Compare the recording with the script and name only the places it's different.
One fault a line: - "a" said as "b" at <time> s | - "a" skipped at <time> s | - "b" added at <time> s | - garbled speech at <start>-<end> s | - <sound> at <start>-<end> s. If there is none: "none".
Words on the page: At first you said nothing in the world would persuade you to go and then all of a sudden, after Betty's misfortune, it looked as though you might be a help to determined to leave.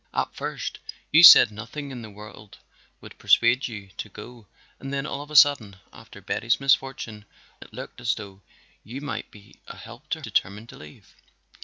none